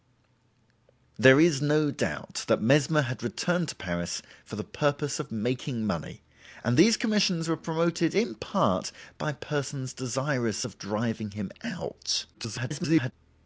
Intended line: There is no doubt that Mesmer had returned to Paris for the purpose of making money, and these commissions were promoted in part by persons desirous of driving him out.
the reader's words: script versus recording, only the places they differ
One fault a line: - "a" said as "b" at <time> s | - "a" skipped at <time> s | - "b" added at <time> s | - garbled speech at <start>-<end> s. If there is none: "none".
- garbled speech at 12.3-13.1 s